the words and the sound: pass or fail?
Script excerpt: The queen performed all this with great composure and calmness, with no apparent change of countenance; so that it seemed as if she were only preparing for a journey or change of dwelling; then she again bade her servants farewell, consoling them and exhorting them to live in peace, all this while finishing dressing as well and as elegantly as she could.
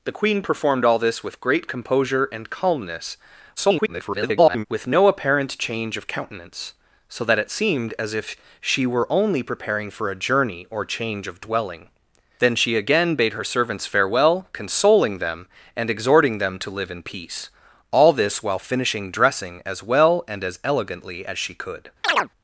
fail